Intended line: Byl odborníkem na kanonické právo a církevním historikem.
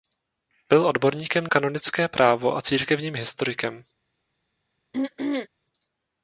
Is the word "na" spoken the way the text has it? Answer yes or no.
no